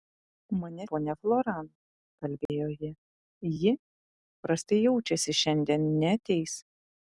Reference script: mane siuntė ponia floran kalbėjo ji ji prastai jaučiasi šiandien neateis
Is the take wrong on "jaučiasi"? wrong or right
right